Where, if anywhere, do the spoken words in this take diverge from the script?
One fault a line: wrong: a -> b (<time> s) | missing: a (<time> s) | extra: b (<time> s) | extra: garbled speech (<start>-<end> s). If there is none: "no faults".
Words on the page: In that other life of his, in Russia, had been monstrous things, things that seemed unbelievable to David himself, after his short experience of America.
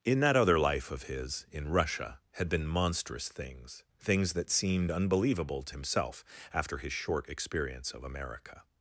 missing: David (5.7 s)